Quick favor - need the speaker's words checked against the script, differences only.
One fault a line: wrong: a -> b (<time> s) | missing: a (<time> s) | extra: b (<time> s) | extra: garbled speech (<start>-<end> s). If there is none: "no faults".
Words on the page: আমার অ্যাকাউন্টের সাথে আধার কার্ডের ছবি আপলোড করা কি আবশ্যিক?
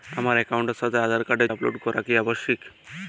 missing: ছবি (1.5 s)